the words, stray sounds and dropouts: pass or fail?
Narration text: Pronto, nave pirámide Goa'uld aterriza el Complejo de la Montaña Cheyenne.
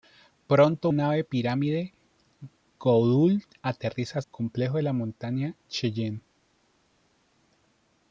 pass